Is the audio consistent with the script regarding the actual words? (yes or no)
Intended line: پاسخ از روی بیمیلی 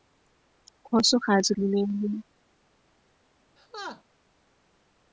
no